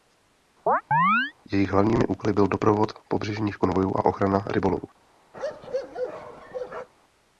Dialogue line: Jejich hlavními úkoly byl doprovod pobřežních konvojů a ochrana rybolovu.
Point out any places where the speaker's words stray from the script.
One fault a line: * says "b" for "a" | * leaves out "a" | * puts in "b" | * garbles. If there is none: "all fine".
all fine